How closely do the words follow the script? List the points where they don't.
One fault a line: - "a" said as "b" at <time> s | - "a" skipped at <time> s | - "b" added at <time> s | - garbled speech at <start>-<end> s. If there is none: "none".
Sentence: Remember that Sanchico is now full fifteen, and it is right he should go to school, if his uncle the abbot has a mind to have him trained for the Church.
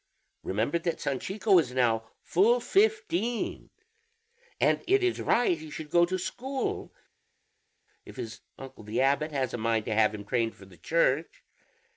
none